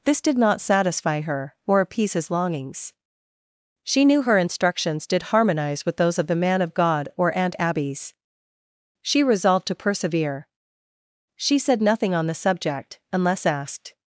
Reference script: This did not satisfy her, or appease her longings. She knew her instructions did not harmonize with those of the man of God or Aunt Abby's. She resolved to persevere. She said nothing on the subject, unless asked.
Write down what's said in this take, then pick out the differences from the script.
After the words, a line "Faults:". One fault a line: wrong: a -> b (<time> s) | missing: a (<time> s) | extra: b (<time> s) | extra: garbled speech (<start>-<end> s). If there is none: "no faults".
This did not satisfy her, or appease his longings. She knew her instructions did harmonize with those of the man of God or Aunt Abby's. She resolved to persevere. She said nothing on the subject, unless asked.
Faults:
wrong: her -> his (2.1 s)
missing: not (5.2 s)